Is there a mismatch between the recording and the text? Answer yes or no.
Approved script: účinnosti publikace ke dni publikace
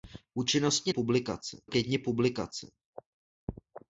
no